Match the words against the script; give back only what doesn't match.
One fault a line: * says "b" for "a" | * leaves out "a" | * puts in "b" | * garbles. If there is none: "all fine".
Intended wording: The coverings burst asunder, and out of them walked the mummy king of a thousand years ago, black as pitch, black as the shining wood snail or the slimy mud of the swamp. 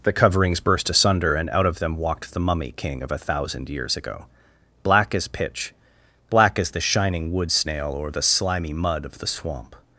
all fine